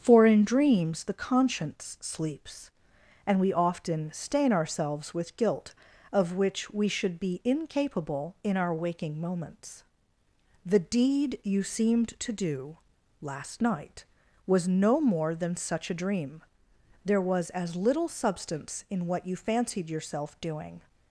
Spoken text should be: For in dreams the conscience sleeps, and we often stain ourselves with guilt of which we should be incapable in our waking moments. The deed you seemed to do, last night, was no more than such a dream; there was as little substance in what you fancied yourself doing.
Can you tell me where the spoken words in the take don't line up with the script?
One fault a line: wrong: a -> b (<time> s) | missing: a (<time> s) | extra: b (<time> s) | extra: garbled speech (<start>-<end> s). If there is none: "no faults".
no faults